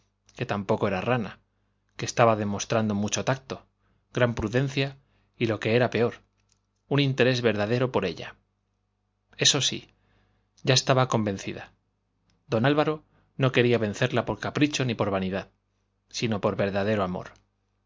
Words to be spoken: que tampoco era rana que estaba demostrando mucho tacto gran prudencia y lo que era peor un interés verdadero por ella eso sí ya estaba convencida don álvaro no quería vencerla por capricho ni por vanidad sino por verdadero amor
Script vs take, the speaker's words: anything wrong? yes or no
no